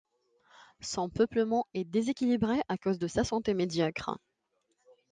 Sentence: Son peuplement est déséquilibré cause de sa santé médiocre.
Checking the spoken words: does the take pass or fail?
fail